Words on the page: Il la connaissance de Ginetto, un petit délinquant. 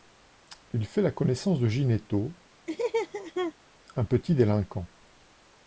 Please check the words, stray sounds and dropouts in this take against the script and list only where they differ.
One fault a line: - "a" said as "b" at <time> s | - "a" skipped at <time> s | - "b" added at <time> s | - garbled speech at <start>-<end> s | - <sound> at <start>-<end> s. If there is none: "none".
- "fait" added at 0.9 s
- laugh at 2.7-3.5 s